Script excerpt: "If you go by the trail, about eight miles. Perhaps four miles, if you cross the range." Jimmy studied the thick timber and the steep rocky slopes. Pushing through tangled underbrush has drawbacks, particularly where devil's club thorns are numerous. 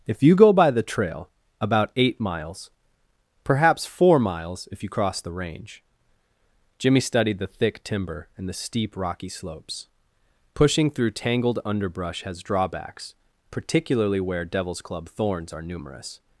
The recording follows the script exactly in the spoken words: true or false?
true